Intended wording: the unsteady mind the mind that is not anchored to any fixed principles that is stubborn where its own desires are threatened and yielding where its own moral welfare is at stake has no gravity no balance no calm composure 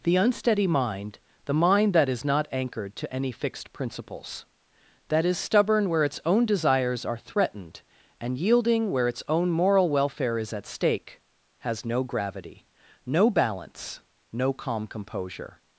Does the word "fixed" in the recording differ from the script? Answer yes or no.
no